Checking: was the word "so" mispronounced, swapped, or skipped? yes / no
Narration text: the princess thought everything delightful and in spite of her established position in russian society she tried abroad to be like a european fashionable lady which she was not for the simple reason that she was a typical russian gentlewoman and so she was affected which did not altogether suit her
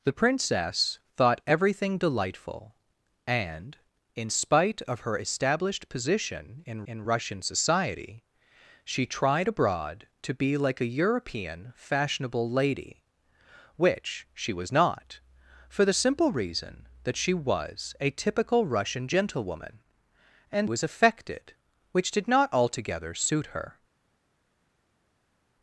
yes